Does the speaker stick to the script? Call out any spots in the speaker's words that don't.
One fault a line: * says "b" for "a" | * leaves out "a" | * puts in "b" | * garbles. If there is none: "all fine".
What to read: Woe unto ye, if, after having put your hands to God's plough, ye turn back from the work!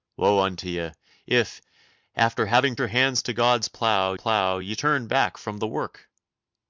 * leaves out "put"
* puts in "plough"